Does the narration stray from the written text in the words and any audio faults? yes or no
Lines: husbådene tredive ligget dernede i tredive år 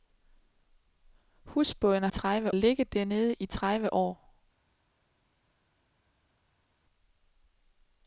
no